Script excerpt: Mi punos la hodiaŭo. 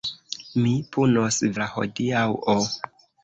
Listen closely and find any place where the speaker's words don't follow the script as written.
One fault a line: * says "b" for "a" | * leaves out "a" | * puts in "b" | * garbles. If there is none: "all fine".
all fine